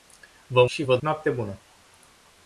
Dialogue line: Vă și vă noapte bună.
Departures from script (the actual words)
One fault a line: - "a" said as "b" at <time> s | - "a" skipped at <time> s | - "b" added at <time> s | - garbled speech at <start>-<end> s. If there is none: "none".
none